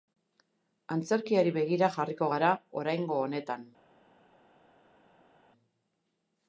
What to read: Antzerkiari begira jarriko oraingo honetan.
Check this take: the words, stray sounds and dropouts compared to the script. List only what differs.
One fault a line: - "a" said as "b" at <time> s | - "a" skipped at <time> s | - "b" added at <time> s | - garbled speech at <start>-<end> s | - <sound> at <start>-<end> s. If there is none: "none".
- "gara" added at 2.3 s